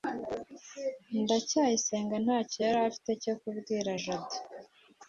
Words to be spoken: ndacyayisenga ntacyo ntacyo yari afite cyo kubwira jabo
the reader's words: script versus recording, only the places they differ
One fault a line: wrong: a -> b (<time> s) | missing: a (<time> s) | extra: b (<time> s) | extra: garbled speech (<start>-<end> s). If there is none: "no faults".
missing: ntacyo (2.6 s)